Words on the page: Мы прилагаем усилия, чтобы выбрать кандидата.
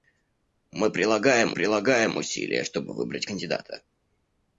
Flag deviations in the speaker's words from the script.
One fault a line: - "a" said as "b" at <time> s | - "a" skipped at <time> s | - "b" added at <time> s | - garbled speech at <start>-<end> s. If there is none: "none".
- "прилагаем" added at 1.5 s